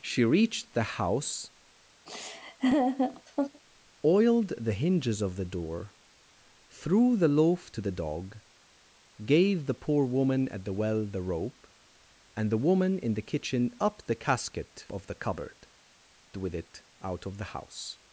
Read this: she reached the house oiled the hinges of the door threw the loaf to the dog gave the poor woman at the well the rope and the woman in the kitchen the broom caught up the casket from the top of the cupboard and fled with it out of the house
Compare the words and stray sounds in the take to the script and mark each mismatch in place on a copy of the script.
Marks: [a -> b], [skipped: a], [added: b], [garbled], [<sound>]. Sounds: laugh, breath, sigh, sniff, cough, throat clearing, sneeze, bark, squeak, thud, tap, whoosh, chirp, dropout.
she reached the house [laugh] oiled the hinges of the door threw the loaf to the dog gave the poor woman at the well the rope and the woman in the kitchen [skipped: the broom caught] up the casket [skipped: from the top] of the cupboard [skipped: and fled] with it out of the house